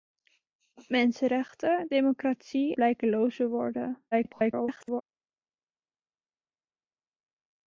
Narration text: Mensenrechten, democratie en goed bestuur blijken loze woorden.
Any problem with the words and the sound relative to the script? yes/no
yes